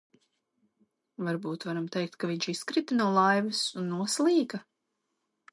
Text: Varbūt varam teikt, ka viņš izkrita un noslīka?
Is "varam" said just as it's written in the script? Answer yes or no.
yes